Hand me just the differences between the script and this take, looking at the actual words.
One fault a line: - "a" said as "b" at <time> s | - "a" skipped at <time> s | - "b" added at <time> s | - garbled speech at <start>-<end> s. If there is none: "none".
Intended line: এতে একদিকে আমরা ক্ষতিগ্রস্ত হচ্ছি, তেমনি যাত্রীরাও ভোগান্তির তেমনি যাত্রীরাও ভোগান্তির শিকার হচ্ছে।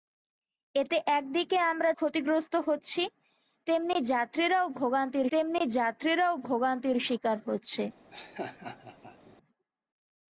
none